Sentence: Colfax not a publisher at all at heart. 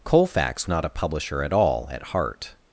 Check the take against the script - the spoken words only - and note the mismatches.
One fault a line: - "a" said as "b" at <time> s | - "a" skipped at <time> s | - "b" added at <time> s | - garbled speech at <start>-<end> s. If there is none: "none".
none